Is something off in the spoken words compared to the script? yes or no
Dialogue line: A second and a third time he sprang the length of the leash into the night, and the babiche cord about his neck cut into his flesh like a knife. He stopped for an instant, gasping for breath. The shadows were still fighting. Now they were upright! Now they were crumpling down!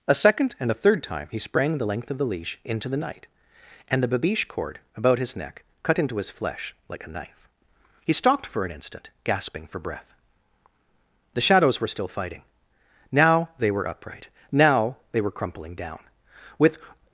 yes